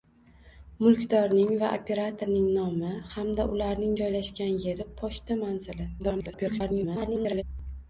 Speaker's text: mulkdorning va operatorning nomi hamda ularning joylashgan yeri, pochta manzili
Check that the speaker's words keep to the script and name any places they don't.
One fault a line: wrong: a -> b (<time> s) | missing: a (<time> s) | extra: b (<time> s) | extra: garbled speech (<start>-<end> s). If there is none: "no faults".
extra: garbled speech (6.0-7.4 s)